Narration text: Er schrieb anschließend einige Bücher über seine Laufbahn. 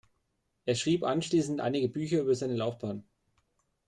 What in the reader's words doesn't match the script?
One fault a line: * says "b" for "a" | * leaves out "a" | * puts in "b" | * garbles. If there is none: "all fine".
all fine